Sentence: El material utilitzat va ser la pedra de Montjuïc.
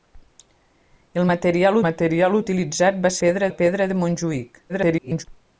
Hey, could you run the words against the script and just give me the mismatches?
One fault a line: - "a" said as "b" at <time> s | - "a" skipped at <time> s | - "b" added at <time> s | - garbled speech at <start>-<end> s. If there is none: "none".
- "material" added at 1.9 s
- "ser" said as "pedra" at 3.3 s
- garbled speech at 4.7-5.2 s